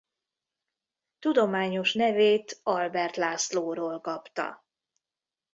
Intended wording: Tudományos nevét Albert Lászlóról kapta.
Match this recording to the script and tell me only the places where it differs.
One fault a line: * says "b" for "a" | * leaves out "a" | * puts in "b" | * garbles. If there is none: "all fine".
all fine